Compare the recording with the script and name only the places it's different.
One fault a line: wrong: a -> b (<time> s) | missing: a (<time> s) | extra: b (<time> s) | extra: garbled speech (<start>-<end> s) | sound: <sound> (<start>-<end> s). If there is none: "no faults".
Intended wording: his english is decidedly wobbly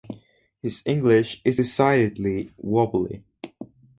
no faults